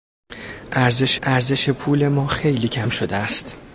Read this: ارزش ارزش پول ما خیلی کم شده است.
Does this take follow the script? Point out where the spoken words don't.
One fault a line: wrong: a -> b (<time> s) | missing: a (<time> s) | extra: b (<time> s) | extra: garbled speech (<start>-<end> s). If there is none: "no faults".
no faults